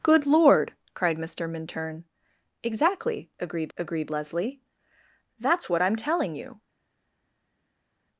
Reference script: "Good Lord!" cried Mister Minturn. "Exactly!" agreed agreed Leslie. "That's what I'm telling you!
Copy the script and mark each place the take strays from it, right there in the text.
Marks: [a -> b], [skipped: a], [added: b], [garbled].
"Good Lord!" cried Mister Minturn. "Exactly!" agreed agreed Leslie. "That's what I'm telling you!